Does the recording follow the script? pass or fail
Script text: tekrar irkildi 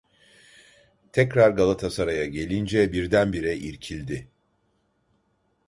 fail